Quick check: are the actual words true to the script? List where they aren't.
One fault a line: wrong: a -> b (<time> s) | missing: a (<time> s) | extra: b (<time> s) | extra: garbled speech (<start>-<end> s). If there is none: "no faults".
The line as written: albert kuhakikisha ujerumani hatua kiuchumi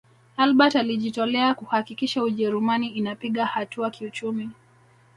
extra: alijitolea (0.8 s)
extra: inapiga (2.9 s)